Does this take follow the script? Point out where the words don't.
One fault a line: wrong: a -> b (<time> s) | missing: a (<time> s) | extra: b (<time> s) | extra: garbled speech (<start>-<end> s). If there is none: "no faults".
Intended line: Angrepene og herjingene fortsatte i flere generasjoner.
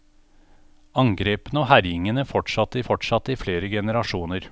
extra: fortsatte (2.8 s)